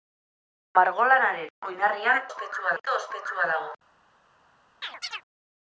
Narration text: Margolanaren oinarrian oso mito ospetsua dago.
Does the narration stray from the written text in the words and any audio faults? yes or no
yes